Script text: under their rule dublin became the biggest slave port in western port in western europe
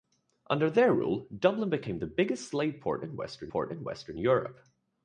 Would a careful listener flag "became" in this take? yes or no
no